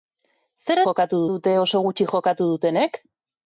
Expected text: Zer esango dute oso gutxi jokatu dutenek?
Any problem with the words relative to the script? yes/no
yes